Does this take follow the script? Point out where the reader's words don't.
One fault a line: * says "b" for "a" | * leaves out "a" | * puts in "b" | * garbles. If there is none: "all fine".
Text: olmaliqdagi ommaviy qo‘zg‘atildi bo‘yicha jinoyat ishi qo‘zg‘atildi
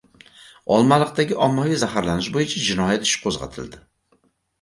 * says "zaharlanish" for "qo‘zg‘atildi"